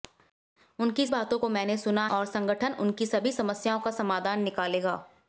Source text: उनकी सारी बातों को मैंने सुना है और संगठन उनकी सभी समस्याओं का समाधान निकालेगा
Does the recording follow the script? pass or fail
fail